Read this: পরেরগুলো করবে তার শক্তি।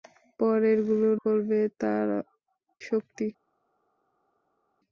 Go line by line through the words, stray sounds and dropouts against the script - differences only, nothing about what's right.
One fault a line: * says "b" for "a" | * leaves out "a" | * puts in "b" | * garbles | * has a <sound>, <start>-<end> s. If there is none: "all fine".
all fine